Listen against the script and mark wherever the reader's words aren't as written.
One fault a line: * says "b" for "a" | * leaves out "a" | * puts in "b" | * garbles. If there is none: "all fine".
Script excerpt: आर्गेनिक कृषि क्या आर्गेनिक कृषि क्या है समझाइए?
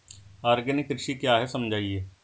* leaves out "आर्गेनिक कृषि क्या"